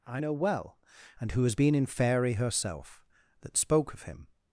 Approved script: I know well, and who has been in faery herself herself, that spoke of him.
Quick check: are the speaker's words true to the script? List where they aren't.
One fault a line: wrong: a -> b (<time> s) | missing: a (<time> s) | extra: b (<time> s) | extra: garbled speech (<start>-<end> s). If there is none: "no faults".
missing: herself (3.1 s)